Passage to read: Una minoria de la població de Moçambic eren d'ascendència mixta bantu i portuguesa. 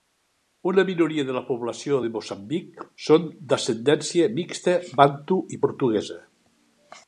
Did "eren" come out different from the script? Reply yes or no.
yes